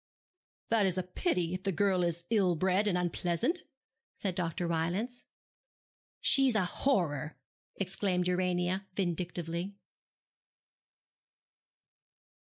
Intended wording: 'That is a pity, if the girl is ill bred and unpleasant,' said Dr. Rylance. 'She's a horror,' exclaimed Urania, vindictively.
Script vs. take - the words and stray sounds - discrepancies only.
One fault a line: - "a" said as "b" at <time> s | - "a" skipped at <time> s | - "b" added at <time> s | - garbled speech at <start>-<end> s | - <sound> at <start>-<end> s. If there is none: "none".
none